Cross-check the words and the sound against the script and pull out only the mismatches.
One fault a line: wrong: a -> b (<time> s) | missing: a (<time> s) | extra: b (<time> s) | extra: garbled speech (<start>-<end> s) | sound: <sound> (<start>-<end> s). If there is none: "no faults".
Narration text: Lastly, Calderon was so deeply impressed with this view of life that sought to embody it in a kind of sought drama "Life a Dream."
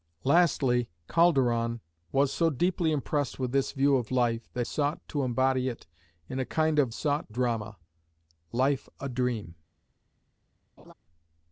sound: laugh (10.8-10.9 s)